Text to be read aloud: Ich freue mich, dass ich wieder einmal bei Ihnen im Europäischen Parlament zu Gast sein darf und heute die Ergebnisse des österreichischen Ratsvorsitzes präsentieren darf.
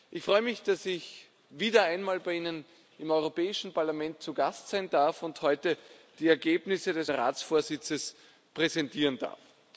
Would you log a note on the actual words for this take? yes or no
yes